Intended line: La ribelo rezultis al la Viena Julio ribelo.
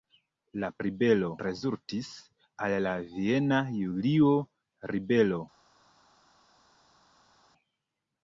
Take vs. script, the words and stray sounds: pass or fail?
pass